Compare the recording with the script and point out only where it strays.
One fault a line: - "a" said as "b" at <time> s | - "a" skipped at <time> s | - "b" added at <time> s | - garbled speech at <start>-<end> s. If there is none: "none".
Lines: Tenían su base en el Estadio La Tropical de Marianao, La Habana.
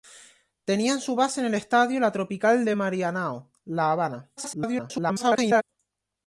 - garbled speech at 4.4-5.6 s